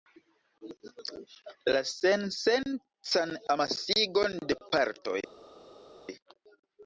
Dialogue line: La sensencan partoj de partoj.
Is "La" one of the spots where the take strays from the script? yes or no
no